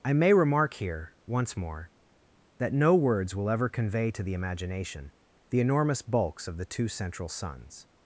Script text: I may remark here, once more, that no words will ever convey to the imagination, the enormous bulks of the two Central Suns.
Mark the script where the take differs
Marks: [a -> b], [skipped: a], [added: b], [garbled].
I may remark here, once more, that no words will ever convey to the imagination, the enormous bulks of the two Central Suns.